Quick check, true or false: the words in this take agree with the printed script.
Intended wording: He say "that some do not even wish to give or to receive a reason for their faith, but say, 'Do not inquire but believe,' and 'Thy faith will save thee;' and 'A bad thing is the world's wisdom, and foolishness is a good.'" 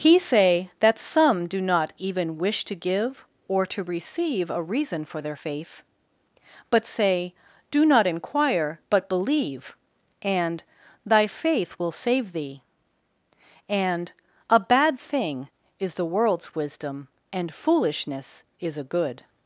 true